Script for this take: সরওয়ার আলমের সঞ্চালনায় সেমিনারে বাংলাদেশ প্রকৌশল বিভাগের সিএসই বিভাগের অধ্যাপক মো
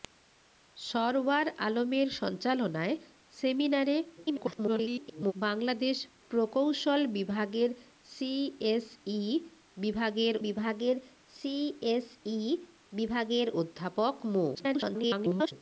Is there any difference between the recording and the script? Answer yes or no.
yes